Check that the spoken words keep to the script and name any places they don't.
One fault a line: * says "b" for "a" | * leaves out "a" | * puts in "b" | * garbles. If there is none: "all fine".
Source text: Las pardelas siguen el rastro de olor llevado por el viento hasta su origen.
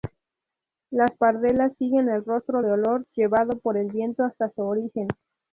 all fine